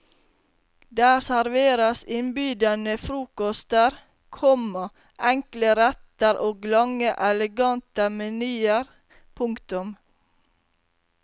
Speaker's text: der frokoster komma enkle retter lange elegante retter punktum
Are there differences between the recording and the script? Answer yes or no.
yes